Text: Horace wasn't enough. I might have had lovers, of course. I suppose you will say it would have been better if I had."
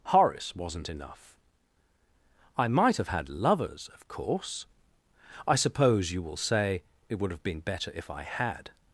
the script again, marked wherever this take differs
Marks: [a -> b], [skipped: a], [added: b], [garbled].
Horace wasn't enough. I might have had lovers, of course. I suppose you will say it would have been better if I had."